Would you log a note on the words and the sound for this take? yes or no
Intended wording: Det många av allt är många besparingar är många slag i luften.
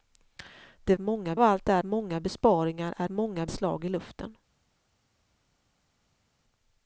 no